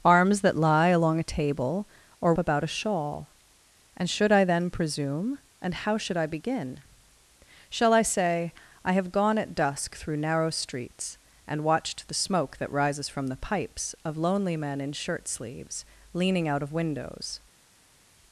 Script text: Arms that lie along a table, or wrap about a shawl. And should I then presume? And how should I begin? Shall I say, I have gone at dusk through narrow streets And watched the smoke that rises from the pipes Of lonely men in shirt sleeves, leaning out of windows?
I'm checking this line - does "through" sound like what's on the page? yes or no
yes